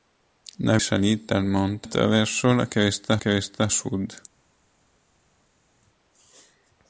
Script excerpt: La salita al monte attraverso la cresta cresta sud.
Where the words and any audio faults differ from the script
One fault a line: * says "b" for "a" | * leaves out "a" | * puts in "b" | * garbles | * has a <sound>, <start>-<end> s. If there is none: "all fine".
all fine